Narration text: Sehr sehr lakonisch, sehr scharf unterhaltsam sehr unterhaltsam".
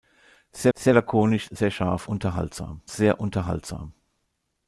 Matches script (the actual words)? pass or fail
pass